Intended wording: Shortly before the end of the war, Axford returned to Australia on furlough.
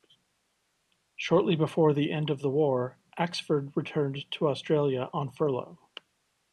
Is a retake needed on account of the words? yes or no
no